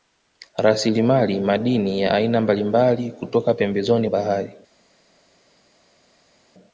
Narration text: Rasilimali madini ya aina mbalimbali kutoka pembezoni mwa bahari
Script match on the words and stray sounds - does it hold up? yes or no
no